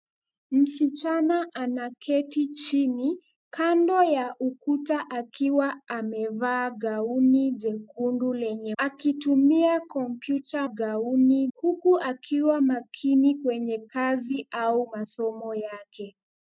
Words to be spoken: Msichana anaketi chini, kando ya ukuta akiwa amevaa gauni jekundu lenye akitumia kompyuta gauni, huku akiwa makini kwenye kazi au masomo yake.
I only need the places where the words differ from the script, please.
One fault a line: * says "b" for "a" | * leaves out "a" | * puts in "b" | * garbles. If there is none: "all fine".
all fine